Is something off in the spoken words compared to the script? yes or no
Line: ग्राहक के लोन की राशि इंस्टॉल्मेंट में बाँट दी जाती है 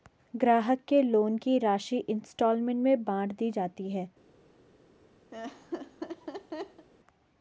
no